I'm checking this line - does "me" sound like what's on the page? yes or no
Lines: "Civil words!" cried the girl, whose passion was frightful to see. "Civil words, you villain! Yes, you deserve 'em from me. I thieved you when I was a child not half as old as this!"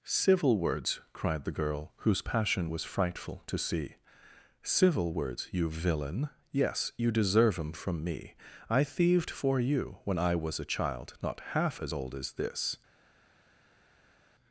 yes